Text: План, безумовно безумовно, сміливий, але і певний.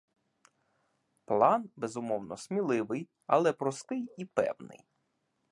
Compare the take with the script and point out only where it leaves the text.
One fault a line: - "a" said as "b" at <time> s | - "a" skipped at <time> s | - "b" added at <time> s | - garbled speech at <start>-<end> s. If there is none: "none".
- "безумовно" skipped at 2.4 s
- "простий" added at 3.5 s